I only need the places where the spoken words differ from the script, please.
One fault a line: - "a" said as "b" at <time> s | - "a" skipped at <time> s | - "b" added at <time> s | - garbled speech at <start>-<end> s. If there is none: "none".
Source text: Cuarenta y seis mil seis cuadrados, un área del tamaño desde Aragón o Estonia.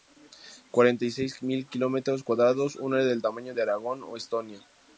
- "seis" said as "kilómetros" at 1.7 s
- "desde" said as "de" at 3.5 s